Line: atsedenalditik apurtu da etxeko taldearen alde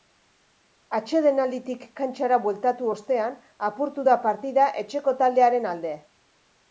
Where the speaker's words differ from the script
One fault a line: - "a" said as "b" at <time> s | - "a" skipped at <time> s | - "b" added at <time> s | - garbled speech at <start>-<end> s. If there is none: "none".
- "kantxara bueltatu ostean" added at 2.0 s
- "partida" added at 4.3 s